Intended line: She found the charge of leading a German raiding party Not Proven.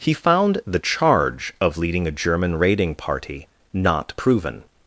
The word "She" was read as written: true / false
false